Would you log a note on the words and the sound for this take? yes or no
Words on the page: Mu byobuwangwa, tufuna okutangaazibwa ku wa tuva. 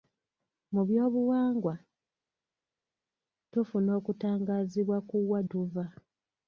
no